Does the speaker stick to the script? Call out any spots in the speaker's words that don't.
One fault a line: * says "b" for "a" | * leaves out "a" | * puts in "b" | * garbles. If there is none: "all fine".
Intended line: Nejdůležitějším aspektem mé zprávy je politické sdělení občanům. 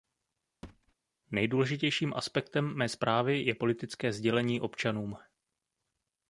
all fine